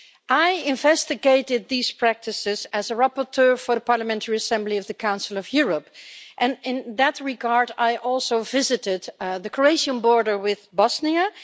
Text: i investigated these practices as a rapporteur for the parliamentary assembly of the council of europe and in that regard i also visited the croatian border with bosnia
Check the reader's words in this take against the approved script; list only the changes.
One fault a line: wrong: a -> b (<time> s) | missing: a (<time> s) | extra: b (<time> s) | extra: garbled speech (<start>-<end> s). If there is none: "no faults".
no faults